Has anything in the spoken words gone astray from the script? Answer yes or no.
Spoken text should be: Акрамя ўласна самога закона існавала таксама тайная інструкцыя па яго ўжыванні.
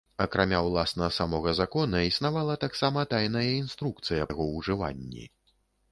yes